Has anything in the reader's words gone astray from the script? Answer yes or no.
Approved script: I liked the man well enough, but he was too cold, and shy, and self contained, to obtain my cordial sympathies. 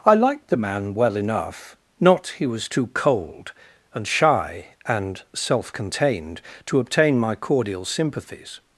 yes